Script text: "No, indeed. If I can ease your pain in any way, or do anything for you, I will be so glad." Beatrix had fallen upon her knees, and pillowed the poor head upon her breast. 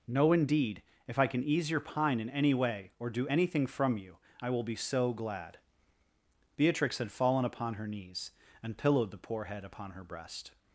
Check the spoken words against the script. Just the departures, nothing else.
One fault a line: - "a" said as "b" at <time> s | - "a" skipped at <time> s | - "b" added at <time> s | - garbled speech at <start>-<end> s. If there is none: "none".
- "pain" said as "pine" at 1.8 s
- "for" said as "from" at 3.7 s